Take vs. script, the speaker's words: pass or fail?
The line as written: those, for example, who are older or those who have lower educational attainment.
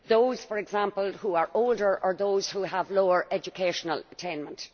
pass